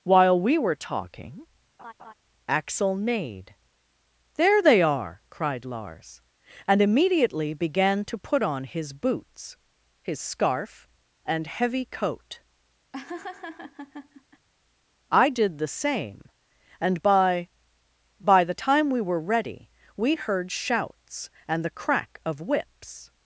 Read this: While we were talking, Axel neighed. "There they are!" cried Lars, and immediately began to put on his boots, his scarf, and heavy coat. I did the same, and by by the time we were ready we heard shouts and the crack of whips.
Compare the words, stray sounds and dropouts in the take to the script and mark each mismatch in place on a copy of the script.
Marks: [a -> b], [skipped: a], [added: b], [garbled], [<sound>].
While we were talking, [laugh] Axel neighed. "There they are!" cried Lars, and immediately began to put on his boots, his scarf, and heavy coat. [laugh] I did the same, and by by the time we were ready we heard shouts and the crack of whips.